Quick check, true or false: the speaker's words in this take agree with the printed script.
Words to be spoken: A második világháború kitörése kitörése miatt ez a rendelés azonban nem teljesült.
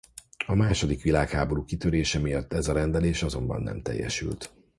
false